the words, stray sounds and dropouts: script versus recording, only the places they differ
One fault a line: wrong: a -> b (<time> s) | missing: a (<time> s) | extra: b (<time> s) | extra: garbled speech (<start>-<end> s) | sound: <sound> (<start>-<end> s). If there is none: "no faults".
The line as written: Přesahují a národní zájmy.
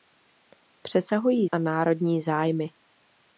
no faults